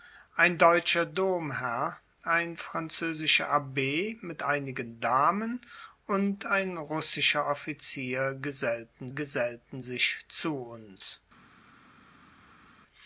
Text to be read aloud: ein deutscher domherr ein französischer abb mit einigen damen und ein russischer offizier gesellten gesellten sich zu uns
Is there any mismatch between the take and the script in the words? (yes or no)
no